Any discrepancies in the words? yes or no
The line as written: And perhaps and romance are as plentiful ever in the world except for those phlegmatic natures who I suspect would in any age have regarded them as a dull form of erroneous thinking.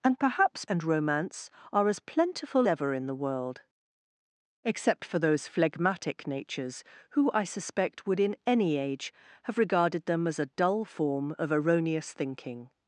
no